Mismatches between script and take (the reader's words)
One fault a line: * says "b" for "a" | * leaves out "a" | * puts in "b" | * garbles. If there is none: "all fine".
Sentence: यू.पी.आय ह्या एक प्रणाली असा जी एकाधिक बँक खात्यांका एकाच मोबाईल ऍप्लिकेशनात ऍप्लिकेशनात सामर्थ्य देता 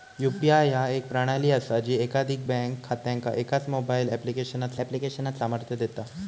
all fine